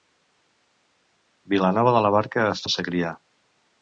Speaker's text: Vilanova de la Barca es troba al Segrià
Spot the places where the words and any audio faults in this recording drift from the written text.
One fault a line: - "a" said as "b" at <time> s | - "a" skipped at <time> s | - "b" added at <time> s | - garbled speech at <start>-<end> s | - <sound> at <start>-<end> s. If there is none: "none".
- "troba" skipped at 2.6 s